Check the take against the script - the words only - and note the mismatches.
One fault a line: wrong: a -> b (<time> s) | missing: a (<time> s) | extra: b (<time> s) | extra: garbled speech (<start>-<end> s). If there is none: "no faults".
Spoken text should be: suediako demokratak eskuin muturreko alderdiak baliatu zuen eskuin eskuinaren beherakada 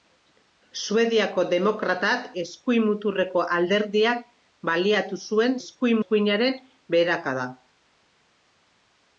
no faults